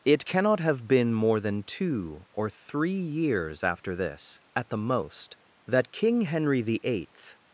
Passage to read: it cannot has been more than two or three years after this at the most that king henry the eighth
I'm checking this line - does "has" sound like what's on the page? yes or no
no